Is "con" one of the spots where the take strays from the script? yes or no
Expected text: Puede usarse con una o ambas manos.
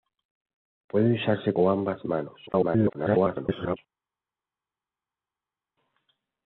yes